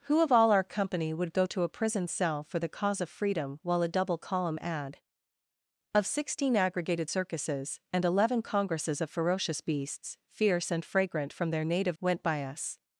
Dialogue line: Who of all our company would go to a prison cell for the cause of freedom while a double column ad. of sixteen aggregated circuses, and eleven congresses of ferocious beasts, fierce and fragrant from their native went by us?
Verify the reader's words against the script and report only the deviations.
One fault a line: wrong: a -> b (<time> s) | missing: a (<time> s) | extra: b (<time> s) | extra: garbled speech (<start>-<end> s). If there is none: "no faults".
no faults